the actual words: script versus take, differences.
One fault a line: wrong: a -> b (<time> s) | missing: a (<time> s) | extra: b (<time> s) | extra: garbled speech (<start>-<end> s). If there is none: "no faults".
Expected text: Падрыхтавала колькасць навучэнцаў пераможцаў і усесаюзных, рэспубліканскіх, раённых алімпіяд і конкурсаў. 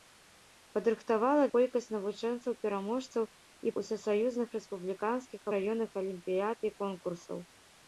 no faults